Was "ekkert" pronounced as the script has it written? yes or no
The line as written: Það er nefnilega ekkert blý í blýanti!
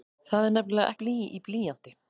no